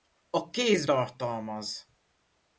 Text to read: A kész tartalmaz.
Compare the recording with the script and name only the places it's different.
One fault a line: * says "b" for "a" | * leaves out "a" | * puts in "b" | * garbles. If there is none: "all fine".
all fine